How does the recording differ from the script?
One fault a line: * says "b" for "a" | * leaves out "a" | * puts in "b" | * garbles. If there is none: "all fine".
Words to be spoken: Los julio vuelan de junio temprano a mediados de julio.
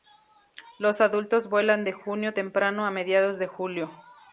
* says "adultos" for "julio"